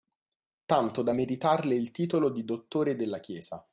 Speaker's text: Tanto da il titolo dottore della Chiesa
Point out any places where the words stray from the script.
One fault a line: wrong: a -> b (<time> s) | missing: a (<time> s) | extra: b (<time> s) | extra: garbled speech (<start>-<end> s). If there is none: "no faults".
extra: meritarle (1.1 s)
extra: di (2.3 s)